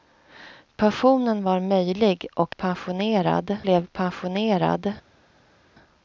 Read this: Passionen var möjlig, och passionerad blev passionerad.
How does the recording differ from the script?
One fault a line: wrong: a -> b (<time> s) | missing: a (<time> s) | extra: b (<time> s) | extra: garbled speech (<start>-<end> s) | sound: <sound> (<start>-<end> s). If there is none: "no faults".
no faults